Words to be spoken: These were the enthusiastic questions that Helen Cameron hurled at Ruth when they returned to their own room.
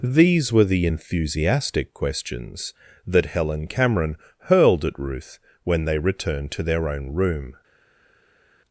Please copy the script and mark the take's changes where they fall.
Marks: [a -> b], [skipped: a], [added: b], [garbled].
These were the enthusiastic questions that Helen Cameron hurled at Ruth when they returned to their own room.